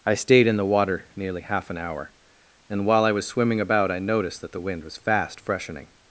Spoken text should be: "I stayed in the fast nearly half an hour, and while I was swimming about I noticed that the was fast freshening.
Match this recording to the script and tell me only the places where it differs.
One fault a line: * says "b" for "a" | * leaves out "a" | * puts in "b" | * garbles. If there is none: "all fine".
* says "water" for "fast"
* puts in "wind"